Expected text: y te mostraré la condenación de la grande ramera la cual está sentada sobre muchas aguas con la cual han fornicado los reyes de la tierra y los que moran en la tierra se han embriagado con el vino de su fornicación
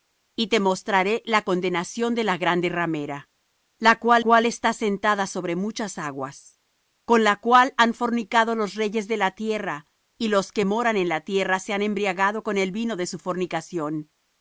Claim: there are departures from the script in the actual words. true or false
true